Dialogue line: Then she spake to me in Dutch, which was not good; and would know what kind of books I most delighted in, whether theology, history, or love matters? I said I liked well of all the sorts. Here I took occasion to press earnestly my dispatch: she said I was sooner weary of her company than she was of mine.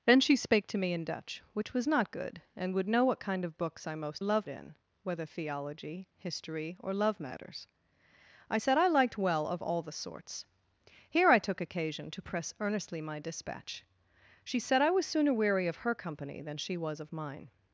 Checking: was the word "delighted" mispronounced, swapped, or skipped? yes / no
yes